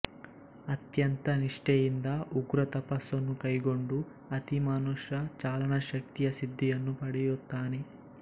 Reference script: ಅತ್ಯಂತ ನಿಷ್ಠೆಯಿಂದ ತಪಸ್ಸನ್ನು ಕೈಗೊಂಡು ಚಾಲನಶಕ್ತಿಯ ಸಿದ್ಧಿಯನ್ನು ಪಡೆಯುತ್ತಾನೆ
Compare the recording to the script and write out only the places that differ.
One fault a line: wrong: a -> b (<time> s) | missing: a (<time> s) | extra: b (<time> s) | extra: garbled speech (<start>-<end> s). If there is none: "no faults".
extra: ಉಗ್ರ (2.4 s)
extra: ಅತಿಮಾನುಷ (4.3 s)